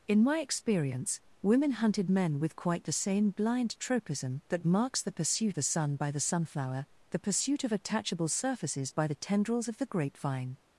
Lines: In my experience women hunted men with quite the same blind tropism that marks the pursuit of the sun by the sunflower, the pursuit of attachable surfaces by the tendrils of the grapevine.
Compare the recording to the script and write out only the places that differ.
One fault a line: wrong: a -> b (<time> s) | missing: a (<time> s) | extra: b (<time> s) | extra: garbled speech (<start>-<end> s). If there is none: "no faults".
missing: of (5.6 s)